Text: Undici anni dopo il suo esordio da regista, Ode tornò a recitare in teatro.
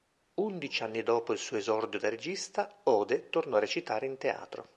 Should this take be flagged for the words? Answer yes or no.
no